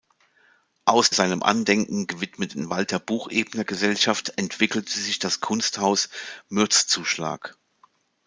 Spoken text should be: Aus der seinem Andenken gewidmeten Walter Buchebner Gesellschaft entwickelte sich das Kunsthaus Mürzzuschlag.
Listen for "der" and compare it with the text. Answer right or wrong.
wrong